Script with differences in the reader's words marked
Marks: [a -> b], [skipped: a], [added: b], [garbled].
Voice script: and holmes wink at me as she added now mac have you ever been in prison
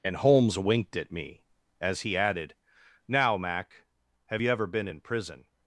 and holmes [wink -> winked] at me as [she -> he] added now mac have you ever been in prison